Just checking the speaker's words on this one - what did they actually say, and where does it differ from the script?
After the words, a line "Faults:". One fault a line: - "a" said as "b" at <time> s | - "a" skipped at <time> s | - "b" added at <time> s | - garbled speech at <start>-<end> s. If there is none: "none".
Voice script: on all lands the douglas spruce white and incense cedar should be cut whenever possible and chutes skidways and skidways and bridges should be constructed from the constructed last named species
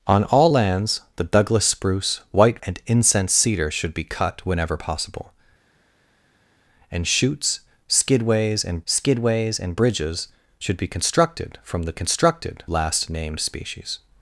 on all lands the douglas spruce white and incense cedar should be cut whenever possible and chutes skidways and skidways and bridges should be constructed from the constructed last named species
Faults:
none